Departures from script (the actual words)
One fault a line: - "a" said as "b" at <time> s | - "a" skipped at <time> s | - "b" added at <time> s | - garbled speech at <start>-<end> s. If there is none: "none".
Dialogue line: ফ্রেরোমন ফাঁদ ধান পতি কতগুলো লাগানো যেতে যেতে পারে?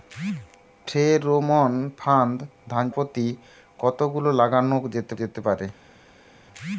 none